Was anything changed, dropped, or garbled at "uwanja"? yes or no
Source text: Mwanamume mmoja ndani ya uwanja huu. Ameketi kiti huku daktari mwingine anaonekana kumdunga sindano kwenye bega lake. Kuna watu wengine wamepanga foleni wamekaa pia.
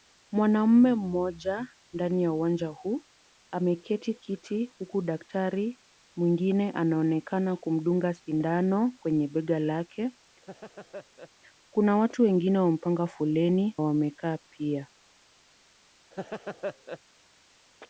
no